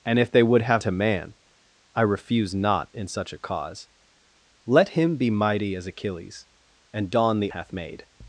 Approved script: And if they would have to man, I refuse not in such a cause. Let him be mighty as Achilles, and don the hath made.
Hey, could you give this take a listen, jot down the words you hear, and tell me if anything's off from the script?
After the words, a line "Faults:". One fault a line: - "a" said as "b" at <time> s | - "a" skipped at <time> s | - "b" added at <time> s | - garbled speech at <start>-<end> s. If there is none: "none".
And if they would have to man, I refuse not in such a cause. Let him be mighty as Achilles, and don the hath made.
Faults:
none